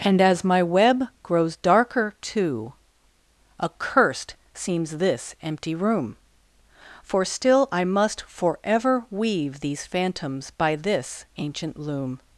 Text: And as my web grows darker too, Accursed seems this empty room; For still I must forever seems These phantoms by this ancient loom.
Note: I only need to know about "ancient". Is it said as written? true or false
true